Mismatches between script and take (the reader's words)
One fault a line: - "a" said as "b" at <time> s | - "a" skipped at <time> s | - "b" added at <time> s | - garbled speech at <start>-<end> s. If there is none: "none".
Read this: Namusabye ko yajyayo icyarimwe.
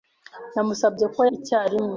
- "yajyayo" skipped at 1.2 s